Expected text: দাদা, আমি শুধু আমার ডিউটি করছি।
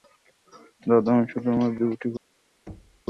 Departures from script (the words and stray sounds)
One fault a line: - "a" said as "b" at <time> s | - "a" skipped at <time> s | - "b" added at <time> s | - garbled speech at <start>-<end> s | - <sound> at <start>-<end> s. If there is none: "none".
- thud at 2.7-3.0 s